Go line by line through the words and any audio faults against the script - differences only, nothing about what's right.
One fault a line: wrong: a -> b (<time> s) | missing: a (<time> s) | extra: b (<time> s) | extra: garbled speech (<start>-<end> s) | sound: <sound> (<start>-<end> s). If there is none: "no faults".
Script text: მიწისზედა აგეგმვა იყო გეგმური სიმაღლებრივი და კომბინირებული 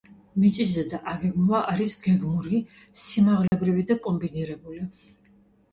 wrong: იყო -> არის (1.7 s)
sound: dropout (3.5-3.5 s)